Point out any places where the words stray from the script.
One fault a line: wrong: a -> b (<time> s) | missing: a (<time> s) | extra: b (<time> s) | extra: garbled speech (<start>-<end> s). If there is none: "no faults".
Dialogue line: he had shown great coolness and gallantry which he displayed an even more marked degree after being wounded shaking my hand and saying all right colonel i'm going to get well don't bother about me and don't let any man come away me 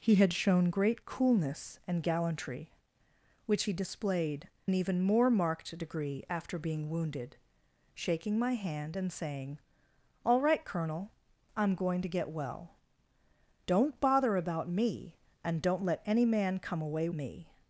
no faults